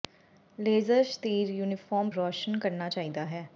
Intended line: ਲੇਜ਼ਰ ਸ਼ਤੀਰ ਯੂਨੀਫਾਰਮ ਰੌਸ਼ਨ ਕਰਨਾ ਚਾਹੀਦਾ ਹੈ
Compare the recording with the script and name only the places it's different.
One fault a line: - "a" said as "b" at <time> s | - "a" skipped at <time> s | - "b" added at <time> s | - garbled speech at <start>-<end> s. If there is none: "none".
none